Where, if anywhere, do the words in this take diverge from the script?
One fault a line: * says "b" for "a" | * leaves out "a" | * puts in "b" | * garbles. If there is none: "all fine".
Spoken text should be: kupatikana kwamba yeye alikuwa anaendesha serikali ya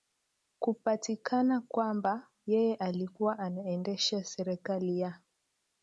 all fine